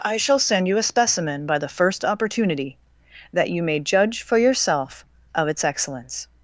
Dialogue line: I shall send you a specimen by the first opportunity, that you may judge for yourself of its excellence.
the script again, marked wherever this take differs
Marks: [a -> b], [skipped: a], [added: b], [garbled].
I shall send you a specimen by the first opportunity, that you may judge for yourself of its excellence.